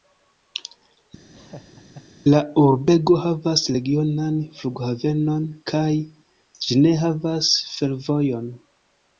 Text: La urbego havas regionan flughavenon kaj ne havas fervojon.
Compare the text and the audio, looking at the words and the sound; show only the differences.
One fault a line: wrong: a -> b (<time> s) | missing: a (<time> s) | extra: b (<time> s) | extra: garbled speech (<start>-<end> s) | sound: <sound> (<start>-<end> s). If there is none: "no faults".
sound: laugh (1.3-2.1 s)
extra: ĝi (6.7 s)